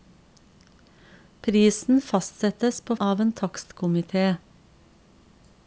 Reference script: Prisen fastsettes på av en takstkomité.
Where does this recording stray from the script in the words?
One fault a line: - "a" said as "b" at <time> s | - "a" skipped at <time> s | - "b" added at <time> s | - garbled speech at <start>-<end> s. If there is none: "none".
none